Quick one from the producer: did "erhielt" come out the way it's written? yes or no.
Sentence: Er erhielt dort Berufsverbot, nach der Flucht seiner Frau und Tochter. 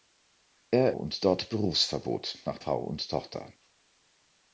no